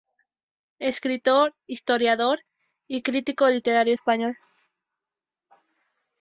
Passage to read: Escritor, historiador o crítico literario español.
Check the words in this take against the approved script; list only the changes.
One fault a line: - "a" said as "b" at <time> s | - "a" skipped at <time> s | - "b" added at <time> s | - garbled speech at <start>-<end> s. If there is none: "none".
- "o" said as "y" at 2.9 s